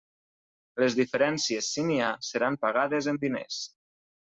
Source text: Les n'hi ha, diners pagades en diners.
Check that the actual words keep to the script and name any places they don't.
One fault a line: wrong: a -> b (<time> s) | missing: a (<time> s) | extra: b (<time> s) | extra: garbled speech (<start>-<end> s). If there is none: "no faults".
extra: diferències si (1.0 s)
wrong: diners -> seran (2.3 s)